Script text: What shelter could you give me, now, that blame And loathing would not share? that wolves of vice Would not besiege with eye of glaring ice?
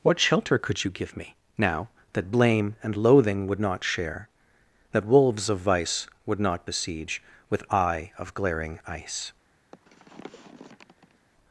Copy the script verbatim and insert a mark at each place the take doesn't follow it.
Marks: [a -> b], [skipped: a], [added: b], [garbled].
What shelter could you give me, now, that blame And loathing would not share? that wolves of vice Would not besiege with eye of glaring ice?